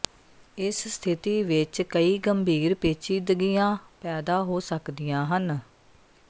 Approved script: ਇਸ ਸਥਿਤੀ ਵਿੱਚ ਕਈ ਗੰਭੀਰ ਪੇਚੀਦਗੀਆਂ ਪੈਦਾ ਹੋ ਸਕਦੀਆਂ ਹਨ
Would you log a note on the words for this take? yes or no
no